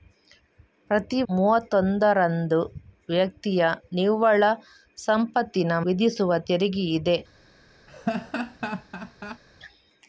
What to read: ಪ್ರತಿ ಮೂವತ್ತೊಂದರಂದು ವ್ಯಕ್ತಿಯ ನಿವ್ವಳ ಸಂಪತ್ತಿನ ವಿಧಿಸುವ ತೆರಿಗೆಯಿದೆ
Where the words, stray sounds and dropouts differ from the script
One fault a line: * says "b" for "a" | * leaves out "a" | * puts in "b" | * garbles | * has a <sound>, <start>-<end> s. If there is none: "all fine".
* has a laugh, 7.9-9.4 s